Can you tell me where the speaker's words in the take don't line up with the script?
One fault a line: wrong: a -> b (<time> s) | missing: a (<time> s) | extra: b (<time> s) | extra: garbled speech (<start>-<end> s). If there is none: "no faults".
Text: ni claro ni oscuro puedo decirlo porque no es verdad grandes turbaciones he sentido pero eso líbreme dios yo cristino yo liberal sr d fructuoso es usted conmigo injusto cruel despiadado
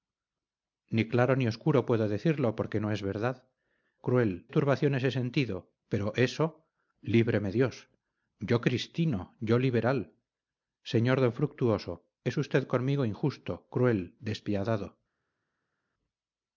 wrong: grandes -> cruel (4.0 s)